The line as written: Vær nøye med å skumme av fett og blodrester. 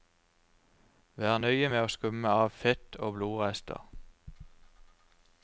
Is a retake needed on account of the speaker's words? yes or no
no